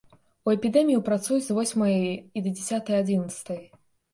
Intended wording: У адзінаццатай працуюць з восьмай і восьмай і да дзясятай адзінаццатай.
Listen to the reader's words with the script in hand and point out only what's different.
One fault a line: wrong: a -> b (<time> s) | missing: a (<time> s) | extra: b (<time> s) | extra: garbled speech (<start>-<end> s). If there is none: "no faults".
wrong: адзінаццатай -> эпідэмію (0.5 s)
missing: восьмай і (2.4 s)